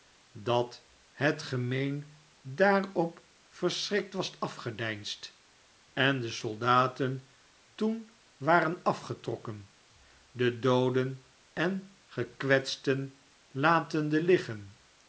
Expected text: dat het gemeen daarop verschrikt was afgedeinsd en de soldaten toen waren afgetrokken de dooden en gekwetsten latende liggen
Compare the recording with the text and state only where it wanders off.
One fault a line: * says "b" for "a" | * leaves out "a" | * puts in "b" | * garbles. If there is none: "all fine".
all fine